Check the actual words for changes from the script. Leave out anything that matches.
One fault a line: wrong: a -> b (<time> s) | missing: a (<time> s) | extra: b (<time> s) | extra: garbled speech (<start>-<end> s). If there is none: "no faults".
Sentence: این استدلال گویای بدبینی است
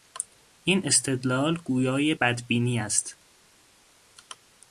no faults